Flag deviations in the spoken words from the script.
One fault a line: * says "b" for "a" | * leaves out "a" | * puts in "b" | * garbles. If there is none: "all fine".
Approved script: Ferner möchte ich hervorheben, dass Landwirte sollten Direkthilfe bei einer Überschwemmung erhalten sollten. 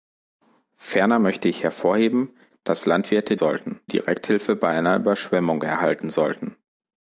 all fine